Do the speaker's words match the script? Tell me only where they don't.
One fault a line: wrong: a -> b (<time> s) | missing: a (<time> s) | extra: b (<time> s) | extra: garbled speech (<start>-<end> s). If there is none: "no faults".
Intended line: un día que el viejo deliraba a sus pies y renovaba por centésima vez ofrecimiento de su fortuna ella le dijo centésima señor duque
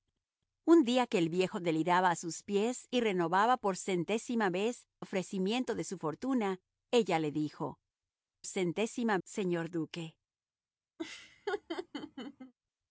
no faults